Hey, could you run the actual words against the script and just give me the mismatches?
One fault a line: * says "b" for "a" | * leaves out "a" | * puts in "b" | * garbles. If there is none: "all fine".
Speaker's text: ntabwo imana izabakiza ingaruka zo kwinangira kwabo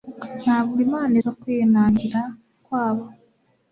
* leaves out "izabakiza ingaruka"